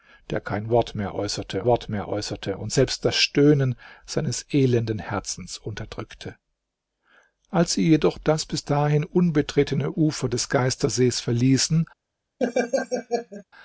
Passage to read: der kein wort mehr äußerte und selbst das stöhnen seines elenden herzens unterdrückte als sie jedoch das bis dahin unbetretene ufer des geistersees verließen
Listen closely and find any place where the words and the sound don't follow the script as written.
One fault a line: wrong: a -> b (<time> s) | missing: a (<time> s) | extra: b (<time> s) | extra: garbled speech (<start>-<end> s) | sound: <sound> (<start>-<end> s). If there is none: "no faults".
extra: wort mehr äußerte (1.6 s)
sound: laugh (12.4-13.4 s)